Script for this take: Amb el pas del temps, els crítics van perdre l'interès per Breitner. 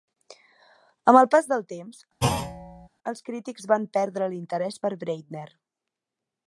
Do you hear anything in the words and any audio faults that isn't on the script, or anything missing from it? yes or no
yes